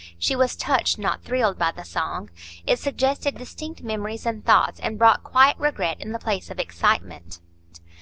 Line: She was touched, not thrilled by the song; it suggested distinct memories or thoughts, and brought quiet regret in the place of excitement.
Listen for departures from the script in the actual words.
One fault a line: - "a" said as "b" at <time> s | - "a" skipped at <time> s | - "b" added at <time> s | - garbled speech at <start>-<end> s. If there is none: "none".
- "or" said as "and" at 4.2 s